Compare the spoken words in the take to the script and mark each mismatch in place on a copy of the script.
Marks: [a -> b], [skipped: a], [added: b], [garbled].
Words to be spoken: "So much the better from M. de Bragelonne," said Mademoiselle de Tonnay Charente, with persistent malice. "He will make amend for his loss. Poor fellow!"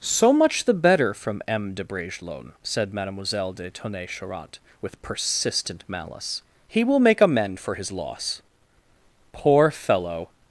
"So much the better from M. de Bragelonne," said Mademoiselle de Tonnay Charente, with persistent malice. "He will make amend for his loss. Poor fellow!"